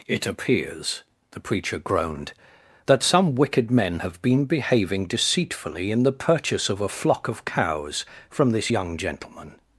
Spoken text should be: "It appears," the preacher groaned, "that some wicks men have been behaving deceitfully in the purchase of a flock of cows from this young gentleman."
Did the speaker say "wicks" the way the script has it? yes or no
no